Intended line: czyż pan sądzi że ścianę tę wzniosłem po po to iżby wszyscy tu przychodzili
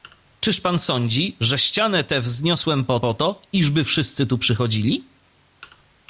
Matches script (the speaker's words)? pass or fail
pass